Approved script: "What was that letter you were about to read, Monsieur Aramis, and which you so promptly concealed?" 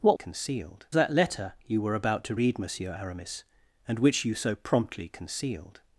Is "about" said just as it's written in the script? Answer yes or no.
yes